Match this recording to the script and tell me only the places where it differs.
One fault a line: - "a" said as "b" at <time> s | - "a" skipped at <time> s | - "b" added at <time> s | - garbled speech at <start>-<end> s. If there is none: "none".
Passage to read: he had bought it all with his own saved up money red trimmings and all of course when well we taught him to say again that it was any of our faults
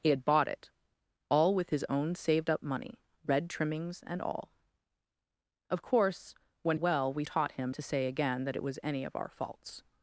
none